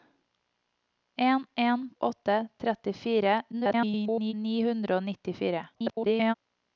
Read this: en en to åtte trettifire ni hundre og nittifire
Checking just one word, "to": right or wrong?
wrong